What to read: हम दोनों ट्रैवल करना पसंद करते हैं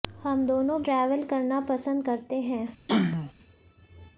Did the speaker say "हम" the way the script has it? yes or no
yes